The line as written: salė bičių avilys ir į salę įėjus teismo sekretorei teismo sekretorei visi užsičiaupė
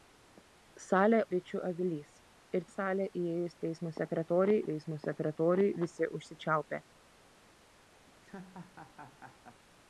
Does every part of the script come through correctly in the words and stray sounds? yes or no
no